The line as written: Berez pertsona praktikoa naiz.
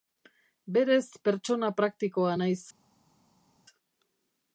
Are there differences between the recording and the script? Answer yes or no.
no